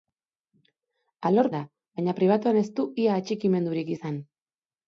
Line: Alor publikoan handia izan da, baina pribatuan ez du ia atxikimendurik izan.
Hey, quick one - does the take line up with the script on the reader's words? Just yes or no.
no